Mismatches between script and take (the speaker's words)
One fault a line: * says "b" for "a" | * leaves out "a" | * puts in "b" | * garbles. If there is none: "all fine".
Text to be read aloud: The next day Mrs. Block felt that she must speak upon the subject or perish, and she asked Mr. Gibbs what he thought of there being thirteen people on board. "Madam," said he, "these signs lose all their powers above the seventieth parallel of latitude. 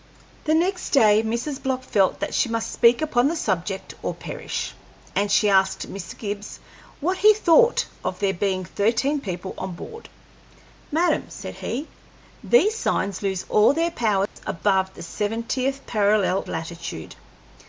* leaves out "of"